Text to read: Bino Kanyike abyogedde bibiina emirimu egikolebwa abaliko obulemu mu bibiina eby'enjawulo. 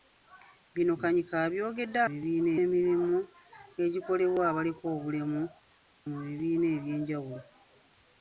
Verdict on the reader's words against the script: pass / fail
pass